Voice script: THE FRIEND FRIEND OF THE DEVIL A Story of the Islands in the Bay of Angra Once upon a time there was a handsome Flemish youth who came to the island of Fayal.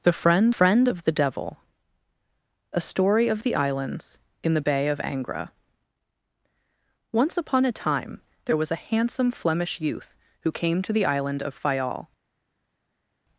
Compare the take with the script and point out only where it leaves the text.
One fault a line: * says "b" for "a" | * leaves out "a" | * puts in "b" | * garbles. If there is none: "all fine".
all fine